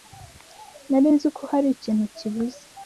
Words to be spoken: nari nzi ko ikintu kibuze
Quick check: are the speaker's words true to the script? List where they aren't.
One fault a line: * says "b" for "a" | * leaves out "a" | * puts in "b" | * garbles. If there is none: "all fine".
* puts in "hari"